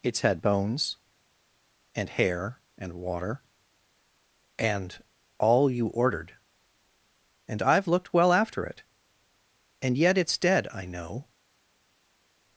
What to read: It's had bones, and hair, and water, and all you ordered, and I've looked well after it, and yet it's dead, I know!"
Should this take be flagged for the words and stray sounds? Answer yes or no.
no